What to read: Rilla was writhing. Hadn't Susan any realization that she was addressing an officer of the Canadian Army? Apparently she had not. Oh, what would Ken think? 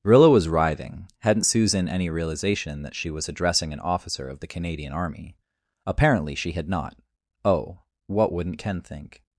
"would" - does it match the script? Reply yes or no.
no